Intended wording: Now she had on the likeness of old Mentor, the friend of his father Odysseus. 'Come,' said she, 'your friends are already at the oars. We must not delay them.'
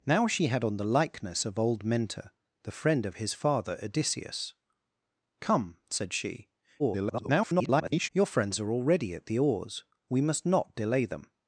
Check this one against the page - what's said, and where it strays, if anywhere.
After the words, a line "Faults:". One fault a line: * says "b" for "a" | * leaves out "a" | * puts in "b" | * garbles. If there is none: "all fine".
Now she had on the likeness of old Mentor, the friend of his father Odysseus. 'Come,' said she, [garbled] 'your friends are already at the oars. We must not delay them.'
Faults:
* garbles